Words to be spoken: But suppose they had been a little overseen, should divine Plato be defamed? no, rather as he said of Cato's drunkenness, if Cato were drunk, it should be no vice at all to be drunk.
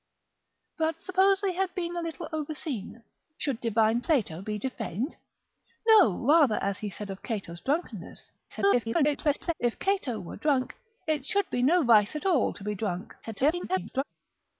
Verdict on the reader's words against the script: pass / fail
fail